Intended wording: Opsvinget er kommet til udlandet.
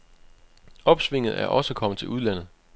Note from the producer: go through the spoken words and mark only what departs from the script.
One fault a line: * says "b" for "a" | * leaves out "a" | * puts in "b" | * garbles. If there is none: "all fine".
* puts in "også"